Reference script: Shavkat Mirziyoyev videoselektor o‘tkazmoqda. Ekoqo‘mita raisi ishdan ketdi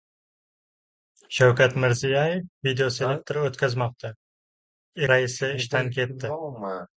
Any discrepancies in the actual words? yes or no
yes